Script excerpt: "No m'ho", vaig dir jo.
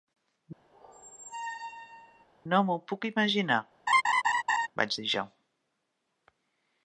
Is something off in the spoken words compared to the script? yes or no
yes